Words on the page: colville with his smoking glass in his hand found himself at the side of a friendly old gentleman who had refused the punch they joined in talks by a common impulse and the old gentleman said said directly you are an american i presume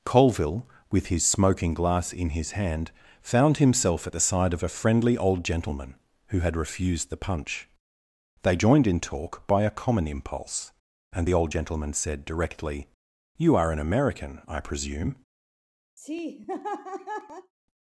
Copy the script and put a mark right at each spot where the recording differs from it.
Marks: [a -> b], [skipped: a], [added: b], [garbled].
colville with his smoking glass in his hand found himself at the side of a friendly old gentleman who had refused the punch they joined in [talks -> talk] by a common impulse and the old gentleman said [skipped: said] directly you are an american i presume